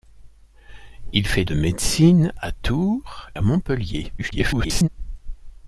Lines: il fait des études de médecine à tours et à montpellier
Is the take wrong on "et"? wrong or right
wrong